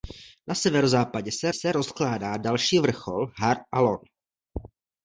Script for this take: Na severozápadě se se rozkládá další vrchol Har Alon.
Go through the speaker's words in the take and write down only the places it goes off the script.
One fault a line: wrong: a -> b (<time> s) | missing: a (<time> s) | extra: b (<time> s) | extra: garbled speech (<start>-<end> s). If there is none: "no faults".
no faults